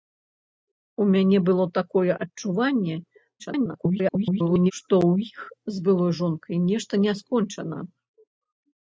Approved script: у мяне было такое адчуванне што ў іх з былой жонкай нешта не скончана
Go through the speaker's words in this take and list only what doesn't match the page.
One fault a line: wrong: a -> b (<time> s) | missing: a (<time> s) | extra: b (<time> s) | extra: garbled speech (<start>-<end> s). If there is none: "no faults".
extra: garbled speech (3.4-4.7 s)